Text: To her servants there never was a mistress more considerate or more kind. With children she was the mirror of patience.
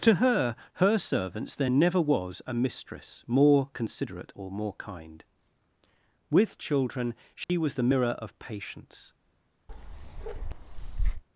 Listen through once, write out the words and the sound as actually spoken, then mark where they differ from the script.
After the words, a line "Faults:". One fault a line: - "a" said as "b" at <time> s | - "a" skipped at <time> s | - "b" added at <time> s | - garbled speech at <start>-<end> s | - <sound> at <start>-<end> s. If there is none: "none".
To her her servants there never was a mistress more considerate or more kind. With children she was the mirror of patience.
Faults:
- "her" added at 0.8 s
- dropout at 7.4-7.5 s
- bark at 9.7-11.2 s